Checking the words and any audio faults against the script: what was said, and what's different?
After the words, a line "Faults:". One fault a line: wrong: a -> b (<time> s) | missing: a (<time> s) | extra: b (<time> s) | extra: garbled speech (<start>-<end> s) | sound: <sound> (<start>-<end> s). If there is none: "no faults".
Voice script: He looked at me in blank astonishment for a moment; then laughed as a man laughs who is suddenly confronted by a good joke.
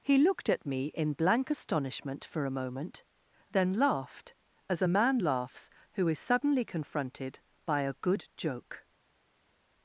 He looked at me in blank astonishment for a moment; then laughed as a man laughs who is suddenly confronted by a good joke.
Faults:
no faults